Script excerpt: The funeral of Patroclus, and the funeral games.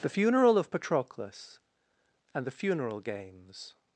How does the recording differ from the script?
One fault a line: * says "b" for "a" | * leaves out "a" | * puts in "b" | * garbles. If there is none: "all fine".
all fine